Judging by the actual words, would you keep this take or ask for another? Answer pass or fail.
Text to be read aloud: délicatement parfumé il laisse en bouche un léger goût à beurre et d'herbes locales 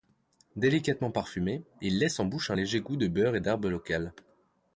fail